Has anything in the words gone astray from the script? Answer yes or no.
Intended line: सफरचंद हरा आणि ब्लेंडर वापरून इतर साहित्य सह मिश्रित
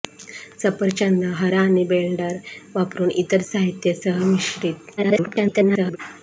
yes